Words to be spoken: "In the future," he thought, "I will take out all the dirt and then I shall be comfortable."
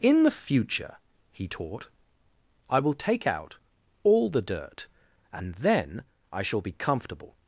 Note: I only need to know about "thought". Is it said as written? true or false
false